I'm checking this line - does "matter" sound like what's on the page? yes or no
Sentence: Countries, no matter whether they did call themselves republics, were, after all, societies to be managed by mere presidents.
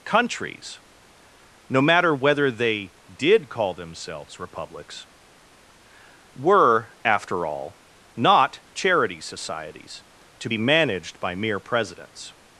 yes